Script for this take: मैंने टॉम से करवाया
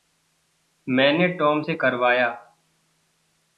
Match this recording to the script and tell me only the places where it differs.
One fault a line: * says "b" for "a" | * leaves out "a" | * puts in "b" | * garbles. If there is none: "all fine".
all fine